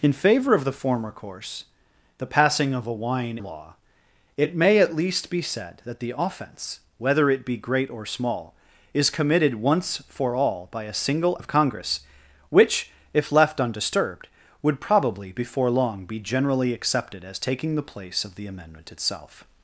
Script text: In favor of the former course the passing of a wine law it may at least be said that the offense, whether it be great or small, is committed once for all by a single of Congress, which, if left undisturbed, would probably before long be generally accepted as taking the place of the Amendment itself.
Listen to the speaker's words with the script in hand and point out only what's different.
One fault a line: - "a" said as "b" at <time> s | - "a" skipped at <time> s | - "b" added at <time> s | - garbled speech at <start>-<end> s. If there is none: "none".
none